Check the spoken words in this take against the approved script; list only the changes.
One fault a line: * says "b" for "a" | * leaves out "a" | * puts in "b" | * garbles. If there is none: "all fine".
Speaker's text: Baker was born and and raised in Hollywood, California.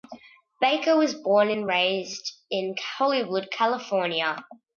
* leaves out "and"